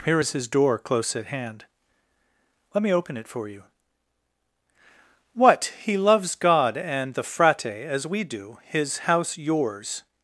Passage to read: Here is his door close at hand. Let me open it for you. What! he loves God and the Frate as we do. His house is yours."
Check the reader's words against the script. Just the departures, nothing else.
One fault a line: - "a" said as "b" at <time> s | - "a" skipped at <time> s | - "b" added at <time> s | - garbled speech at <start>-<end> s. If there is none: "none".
- "is" skipped at 9.4 s